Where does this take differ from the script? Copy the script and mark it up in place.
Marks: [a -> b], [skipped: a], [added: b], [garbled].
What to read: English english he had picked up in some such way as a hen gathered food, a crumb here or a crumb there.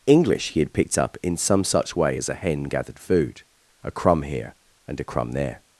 English [skipped: english] he had picked up in some such way as a hen gathered food, a crumb here [or -> and] a crumb there.